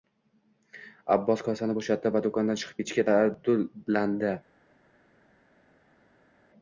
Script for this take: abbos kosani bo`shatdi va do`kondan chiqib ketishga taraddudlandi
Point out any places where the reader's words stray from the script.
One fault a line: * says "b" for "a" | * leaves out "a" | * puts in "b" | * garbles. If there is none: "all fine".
all fine